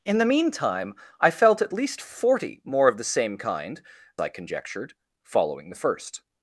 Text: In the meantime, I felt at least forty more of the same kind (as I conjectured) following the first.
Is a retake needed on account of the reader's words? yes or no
yes